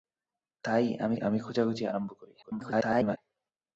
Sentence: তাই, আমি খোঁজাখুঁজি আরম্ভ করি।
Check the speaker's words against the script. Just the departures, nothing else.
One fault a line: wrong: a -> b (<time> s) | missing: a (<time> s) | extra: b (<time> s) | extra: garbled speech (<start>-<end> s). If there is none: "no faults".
extra: আমি (1.2 s)
extra: garbled speech (2.4-3.2 s)